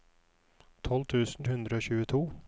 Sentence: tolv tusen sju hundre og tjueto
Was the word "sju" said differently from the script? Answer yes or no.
yes